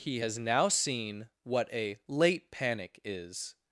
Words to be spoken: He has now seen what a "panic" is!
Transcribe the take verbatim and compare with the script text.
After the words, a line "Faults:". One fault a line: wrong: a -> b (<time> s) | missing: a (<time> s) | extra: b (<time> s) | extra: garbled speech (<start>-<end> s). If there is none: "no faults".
He has now seen what a "late panic" is!
Faults:
extra: late (2.1 s)